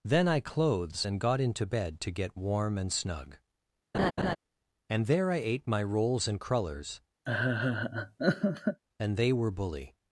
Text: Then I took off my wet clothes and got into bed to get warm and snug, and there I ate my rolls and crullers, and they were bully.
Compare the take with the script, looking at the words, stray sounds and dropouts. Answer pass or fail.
fail